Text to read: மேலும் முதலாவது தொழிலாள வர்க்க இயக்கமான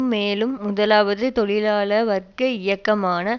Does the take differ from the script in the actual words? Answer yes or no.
no